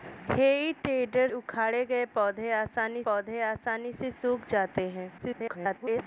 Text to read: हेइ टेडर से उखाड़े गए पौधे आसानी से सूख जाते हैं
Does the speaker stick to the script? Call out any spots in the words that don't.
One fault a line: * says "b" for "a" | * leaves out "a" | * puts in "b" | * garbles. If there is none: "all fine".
* leaves out "से"
* puts in "पौधे आसानी"
* garbles